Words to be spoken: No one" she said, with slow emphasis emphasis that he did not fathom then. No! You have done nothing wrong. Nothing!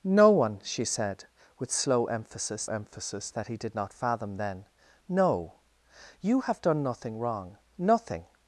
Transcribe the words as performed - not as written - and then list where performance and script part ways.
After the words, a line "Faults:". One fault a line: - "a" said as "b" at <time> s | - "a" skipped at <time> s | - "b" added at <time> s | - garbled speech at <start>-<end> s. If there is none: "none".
No one" she said, with slow emphasis emphasis that he did not fathom then. No! You have done nothing wrong. Nothing!
Faults:
none